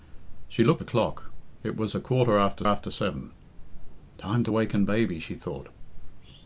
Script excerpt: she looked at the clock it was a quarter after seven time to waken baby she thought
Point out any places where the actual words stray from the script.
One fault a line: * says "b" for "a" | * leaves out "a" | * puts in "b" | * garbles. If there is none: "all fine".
* leaves out "at"
* puts in "after"